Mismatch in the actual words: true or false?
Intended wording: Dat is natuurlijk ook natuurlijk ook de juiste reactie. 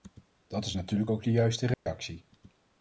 true